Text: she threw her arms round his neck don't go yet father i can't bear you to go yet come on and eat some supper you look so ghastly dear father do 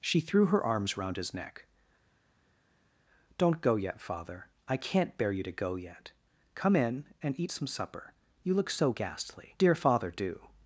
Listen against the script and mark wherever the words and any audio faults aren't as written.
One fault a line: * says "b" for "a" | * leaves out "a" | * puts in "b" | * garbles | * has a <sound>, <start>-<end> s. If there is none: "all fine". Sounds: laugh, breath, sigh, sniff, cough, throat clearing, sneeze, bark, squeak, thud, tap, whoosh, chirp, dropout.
* says "in" for "on"